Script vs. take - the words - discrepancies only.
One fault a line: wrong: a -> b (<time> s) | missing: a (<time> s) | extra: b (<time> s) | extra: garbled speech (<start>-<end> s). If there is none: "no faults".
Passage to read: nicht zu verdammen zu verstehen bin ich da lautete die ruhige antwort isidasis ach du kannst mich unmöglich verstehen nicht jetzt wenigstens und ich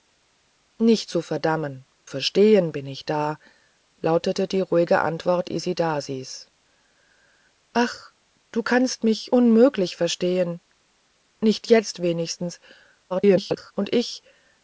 missing: zu (1.9 s)
extra: garbled speech (13.1-13.7 s)